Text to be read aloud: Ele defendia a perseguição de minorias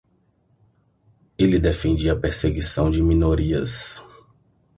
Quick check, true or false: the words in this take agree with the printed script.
true